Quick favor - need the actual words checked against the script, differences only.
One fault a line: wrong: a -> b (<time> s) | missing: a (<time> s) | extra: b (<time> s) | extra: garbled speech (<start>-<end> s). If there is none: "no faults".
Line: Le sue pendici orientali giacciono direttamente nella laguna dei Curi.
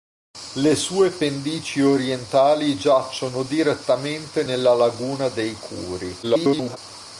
extra: garbled speech (6.2-6.8 s)